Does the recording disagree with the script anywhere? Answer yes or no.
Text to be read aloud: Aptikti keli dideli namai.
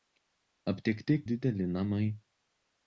yes